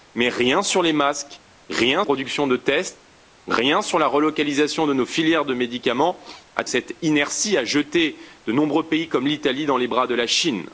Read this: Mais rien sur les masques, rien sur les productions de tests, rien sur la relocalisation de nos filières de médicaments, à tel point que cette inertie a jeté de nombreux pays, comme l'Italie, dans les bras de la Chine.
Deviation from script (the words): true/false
true